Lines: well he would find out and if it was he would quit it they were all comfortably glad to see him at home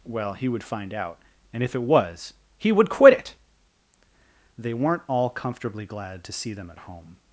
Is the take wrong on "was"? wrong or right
right